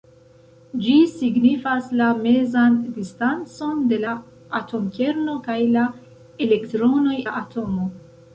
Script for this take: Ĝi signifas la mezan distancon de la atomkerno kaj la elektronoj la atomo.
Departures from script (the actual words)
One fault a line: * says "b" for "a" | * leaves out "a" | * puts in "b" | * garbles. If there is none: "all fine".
all fine